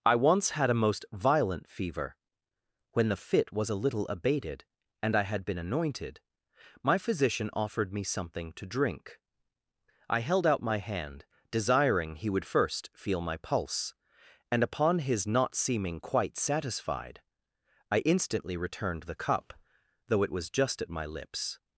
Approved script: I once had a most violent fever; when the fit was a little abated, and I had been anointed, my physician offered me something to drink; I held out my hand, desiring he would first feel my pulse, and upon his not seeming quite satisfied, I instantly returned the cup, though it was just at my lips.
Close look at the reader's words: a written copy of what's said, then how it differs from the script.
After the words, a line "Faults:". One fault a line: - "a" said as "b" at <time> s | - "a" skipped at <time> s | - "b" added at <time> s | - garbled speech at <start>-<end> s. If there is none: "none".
I once had a most violent fever; when the fit was a little abated, and I had been anointed, my physician offered me something to drink; I held out my hand, desiring he would first feel my pulse, and upon his not seeming quite satisfied, I instantly returned the cup, though it was just at my lips.
Faults:
none